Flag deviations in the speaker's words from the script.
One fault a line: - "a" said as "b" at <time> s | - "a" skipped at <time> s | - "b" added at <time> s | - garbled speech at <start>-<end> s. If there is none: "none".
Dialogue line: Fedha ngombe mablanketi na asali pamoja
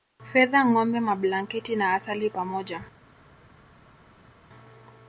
none